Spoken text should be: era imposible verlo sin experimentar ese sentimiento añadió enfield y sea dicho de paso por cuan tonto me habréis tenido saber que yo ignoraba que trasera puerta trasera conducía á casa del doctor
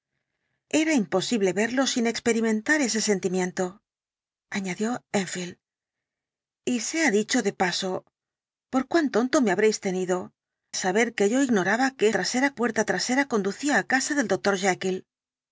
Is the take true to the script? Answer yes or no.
yes